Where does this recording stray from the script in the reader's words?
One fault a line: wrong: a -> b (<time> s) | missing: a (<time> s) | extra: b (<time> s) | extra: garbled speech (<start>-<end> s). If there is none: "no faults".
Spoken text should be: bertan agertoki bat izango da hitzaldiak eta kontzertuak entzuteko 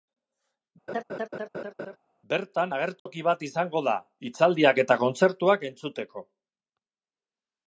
no faults